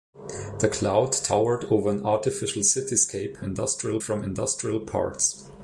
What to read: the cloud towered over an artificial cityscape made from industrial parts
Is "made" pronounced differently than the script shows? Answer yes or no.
yes